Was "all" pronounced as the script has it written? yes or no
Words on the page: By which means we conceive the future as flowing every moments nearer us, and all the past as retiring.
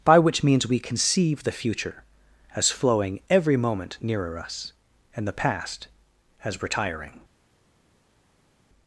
no